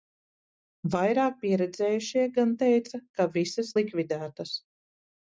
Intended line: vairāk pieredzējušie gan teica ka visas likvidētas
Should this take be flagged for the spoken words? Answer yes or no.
no